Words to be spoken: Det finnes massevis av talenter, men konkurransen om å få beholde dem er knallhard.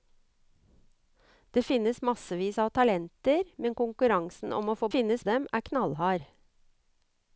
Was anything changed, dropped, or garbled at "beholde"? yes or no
yes